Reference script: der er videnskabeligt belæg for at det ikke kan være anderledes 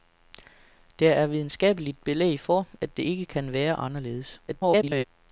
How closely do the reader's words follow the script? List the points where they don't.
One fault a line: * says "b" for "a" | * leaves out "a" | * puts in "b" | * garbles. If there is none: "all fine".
* garbles